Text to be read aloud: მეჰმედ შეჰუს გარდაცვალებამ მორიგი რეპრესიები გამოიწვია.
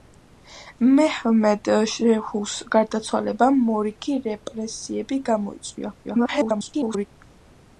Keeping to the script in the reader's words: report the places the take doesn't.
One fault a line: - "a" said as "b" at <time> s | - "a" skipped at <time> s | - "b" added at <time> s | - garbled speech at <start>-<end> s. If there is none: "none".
- garbled speech at 6.0-7.1 s